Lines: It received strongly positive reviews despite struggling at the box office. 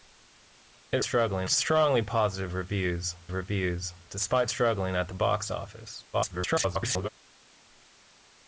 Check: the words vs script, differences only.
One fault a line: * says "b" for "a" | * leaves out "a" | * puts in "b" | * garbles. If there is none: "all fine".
* says "struggling" for "received"
* puts in "reviews"
* garbles